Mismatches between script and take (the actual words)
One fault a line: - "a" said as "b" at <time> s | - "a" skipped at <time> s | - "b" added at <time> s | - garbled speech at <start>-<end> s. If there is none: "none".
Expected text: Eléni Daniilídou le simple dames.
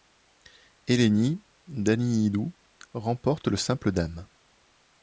- "remporte" added at 3.0 s